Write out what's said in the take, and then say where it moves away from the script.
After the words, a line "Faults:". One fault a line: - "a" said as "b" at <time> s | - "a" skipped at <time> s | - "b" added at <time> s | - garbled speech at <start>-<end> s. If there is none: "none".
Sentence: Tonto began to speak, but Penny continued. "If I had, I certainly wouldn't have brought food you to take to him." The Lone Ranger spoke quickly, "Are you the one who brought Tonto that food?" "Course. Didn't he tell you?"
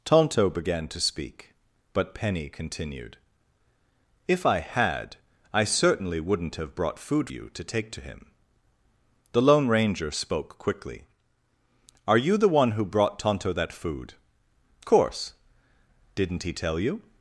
Tonto began to speak, but Penny continued. "If I had, I certainly wouldn't have brought food you to take to him." The Lone Ranger spoke quickly, "Are you the one who brought Tonto that food?" "Course. Didn't he tell you?"
Faults:
none